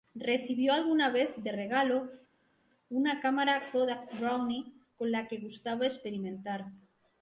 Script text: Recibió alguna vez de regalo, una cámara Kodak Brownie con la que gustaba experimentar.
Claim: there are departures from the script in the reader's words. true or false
false